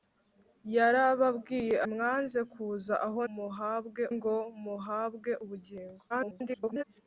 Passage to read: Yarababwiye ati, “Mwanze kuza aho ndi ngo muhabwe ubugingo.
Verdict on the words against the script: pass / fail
fail